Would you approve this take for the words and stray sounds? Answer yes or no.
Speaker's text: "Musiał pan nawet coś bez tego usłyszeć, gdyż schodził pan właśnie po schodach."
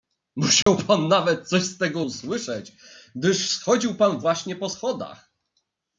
no